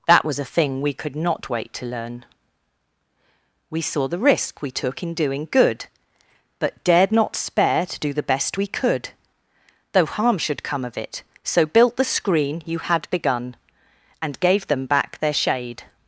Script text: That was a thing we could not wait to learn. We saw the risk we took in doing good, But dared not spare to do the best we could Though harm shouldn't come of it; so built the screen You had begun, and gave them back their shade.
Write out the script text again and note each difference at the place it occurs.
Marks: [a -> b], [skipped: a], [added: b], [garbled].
That was a thing we could not wait to learn. We saw the risk we took in doing good, But dared not spare to do the best we could Though harm [shouldn't -> should] come of it; so built the screen You had begun, and gave them back their shade.